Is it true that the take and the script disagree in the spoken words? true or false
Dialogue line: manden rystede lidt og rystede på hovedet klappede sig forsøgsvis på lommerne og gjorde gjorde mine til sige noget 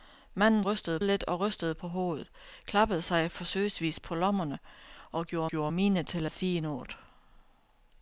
false